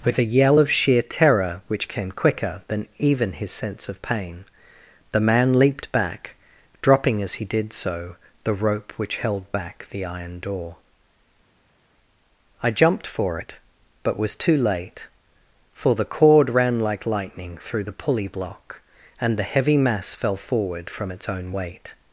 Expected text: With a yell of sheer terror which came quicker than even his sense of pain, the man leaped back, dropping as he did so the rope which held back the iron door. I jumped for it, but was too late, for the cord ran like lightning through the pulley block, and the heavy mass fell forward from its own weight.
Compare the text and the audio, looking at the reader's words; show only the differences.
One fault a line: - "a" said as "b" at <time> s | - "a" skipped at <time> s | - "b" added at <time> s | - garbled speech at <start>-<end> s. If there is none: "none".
none